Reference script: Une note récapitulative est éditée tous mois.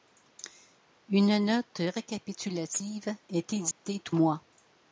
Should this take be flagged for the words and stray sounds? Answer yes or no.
yes